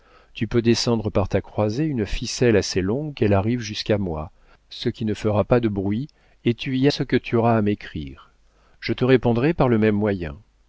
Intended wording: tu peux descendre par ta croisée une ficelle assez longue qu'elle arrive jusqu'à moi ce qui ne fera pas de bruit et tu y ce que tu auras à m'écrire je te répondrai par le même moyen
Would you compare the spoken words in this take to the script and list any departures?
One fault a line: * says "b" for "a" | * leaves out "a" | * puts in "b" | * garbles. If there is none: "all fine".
all fine